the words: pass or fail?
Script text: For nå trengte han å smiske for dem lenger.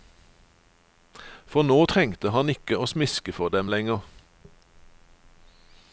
fail